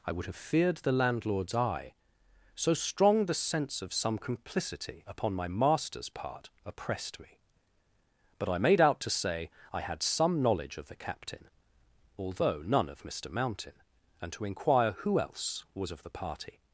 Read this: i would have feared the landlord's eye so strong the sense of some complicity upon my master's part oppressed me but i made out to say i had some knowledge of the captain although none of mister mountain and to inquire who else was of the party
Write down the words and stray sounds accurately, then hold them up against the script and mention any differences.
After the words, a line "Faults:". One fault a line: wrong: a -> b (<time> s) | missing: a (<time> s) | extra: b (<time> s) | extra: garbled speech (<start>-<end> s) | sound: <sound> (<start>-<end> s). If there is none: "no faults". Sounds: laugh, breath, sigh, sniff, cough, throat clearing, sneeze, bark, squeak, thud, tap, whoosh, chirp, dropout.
i would have feared the landlord's eye so strong the sense of some complicity upon my master's part oppressed me but i made out to say i had some knowledge of the captain although none of mister mountain and to inquire who else was of the party
Faults:
no faults